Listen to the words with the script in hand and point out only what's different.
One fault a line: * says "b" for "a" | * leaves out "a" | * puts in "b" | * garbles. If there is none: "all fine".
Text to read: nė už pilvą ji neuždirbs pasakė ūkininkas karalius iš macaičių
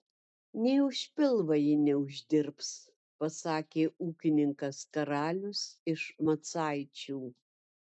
all fine